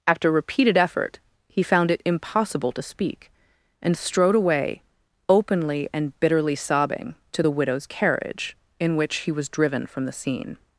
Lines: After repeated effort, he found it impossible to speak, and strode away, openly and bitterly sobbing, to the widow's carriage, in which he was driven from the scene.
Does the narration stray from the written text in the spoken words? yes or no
no